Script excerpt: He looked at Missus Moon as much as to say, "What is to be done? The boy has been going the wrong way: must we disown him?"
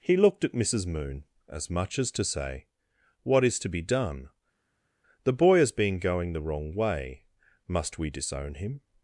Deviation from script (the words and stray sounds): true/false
false